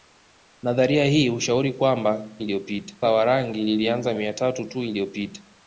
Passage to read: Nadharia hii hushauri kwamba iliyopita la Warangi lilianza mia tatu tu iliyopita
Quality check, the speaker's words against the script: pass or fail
pass